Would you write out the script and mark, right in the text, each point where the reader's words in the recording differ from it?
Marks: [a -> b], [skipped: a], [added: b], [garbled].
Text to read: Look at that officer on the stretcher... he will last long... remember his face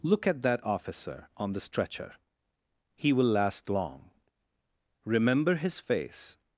Look at that officer on the stretcher... he will last long... remember his face